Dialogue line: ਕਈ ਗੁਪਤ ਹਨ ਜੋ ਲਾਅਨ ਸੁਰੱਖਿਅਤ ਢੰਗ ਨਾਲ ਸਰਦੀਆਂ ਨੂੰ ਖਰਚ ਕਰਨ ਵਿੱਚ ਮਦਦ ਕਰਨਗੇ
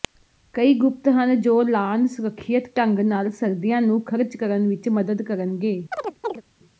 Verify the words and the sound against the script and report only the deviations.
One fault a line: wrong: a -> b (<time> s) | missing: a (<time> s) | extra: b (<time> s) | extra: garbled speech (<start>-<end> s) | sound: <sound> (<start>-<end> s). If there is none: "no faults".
sound: chirp (5.9-6.4 s)